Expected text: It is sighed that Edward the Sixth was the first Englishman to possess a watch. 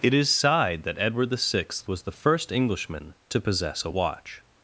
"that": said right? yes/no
yes